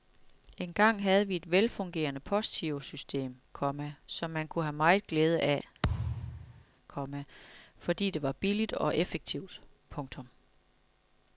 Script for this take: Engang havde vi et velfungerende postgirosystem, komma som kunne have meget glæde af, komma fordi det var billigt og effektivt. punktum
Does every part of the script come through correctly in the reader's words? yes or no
no